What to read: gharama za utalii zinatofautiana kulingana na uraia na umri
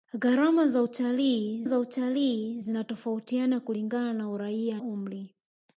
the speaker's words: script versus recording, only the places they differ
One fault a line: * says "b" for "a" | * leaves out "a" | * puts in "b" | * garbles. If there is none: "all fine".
* puts in "za utalii"
* leaves out "na"